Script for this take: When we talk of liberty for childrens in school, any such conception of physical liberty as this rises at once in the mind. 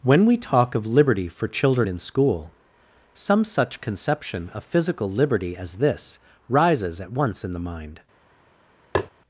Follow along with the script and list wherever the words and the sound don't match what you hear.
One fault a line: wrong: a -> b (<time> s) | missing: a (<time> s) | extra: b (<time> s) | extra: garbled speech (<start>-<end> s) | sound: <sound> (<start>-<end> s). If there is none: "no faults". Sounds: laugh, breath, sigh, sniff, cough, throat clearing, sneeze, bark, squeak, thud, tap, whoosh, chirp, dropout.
wrong: childrens -> children (1.5 s)
wrong: any -> some (3.1 s)
sound: tap (8.9-9.1 s)